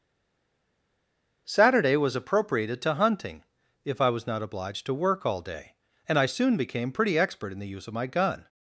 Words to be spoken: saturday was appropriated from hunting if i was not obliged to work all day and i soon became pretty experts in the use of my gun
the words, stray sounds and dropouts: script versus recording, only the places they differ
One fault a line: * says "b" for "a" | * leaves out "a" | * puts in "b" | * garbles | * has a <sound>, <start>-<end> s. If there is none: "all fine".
* says "to" for "from"
* says "expert" for "experts"